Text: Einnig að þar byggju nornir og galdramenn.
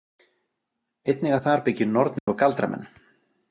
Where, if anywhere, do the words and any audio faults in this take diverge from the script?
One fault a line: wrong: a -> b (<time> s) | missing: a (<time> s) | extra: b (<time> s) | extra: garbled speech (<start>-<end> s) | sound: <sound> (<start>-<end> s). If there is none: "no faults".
sound: dropout (2.2-2.3 s)